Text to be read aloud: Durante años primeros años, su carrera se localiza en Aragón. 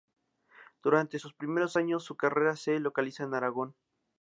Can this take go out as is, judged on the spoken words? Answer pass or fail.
fail